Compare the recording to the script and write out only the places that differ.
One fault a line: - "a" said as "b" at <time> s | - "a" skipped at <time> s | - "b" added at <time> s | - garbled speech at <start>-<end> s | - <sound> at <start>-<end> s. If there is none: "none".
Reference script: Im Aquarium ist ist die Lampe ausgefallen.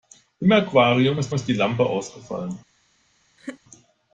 - laugh at 3.4-3.6 s